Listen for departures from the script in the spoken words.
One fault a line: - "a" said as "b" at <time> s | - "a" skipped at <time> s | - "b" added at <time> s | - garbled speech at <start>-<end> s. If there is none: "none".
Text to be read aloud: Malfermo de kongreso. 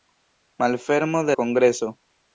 none